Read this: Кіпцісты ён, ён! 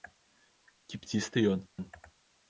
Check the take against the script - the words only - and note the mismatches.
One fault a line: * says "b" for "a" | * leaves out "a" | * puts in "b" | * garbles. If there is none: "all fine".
all fine